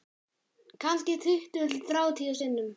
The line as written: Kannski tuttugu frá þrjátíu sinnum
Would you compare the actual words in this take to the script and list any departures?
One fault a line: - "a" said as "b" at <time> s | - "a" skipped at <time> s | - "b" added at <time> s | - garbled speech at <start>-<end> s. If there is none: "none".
- "frá" said as "til" at 1.7 s